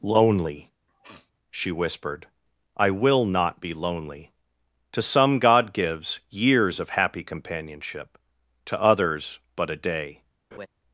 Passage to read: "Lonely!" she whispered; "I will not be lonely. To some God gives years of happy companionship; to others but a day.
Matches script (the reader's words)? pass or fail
pass